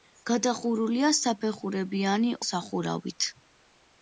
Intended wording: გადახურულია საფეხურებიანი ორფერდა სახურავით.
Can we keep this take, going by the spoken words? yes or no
no